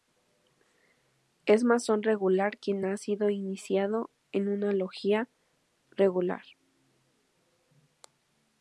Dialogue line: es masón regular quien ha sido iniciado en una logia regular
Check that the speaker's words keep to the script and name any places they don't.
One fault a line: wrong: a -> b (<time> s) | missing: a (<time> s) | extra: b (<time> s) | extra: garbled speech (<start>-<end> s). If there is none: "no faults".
no faults